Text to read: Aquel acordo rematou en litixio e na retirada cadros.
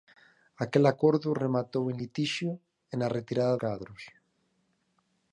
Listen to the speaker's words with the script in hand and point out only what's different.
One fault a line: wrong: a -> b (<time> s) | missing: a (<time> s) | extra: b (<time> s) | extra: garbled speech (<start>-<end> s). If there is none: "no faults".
no faults